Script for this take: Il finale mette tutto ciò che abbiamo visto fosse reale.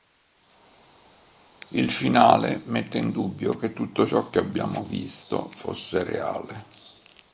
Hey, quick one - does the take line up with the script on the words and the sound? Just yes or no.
no